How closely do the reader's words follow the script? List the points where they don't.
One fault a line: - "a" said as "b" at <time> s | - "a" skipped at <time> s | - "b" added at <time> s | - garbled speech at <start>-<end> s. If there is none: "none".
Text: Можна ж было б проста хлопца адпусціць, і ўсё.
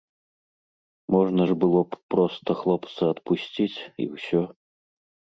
none